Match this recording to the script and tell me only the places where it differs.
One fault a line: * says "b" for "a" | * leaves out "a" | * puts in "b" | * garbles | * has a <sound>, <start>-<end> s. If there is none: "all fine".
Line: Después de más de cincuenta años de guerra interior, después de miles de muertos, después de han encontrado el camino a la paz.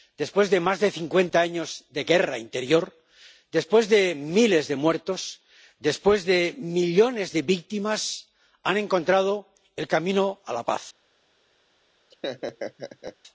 * puts in "millones de víctimas"
* has a laugh, 12.1-13.2 s